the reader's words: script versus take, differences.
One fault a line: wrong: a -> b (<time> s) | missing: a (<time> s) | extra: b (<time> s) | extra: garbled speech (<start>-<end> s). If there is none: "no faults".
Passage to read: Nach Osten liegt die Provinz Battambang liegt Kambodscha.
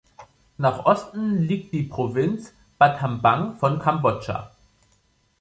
wrong: liegt -> von (3.6 s)